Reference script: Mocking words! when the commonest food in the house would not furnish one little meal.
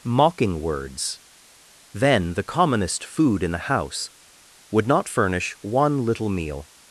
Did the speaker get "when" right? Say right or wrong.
wrong